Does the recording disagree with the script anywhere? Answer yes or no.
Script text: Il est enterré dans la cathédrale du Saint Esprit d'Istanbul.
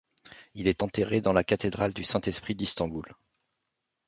no